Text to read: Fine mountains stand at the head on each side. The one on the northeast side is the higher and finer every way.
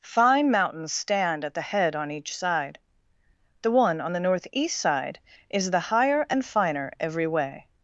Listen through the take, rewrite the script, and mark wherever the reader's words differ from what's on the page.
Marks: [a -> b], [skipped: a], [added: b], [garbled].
Fine mountains stand at the head on each side. The one on the northeast side is the higher and finer every way.